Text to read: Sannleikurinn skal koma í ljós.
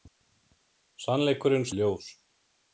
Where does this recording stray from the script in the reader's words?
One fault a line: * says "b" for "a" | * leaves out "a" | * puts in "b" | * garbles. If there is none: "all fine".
* leaves out "skal koma"